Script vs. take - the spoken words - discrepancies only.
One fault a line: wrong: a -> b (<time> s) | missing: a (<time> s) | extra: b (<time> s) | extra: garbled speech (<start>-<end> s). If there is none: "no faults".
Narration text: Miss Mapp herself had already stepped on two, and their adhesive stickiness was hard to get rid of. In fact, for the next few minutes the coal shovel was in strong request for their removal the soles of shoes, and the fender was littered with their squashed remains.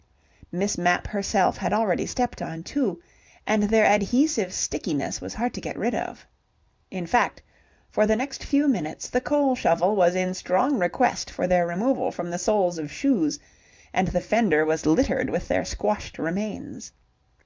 extra: from (12.1 s)